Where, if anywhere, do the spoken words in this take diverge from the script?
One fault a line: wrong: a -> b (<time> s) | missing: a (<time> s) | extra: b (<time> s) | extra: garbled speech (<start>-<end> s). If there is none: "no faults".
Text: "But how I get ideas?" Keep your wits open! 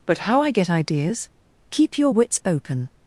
no faults